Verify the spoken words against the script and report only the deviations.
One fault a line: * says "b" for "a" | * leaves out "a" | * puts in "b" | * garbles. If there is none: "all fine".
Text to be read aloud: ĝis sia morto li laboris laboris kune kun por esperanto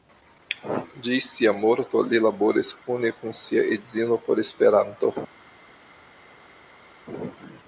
* leaves out "laboris"
* puts in "sia edzino"